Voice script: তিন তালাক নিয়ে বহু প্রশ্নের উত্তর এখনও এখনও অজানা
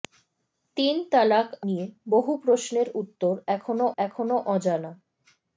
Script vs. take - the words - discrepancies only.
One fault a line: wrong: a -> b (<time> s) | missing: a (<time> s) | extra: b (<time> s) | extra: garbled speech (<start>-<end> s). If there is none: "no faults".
no faults